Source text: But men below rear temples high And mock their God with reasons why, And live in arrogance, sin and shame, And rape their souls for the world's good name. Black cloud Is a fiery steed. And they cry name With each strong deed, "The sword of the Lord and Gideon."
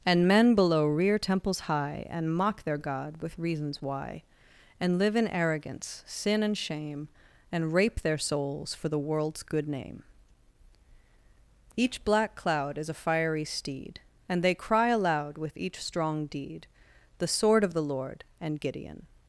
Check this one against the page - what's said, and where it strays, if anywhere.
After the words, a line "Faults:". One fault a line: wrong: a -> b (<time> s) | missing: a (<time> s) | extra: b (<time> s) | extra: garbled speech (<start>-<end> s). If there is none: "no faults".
And men below rear temples high And mock their God with reasons why, And live in arrogance, sin and shame, And rape their souls for the world's good name. Each black cloud Is a fiery steed. And they cry aloud With each strong deed, "The sword of the Lord and Gideon."
Faults:
wrong: But -> And (0.1 s)
extra: Each (11.8 s)
wrong: name -> aloud (14.9 s)